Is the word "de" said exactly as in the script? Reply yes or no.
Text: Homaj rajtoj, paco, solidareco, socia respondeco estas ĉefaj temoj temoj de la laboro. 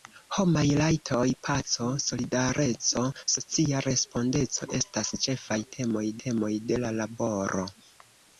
yes